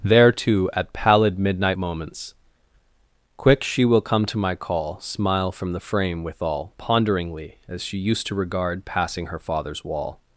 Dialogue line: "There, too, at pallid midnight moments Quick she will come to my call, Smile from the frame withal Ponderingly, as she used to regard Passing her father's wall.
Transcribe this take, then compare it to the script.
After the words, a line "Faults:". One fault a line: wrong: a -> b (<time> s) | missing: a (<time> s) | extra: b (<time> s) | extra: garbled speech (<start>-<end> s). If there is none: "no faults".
"There, too, at pallid midnight moments Quick she will come to my call, Smile from the frame withal Ponderingly, as she used to regard Passing her father's wall.
Faults:
no faults